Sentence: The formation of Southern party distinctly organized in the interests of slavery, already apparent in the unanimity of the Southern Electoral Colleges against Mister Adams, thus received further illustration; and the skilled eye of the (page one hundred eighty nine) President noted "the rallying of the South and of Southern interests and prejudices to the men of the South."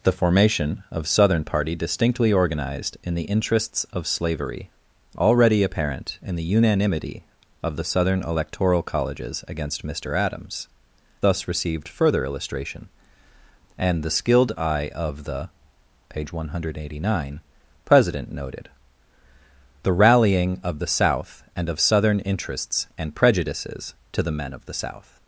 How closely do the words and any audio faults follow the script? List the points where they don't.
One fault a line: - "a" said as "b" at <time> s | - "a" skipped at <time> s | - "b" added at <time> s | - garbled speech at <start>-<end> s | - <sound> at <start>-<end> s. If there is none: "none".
none